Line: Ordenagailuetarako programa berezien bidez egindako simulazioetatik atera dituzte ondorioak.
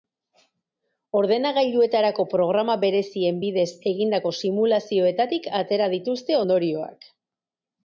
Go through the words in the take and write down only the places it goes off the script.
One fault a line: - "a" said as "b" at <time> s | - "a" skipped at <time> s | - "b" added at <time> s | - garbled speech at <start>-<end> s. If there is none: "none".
none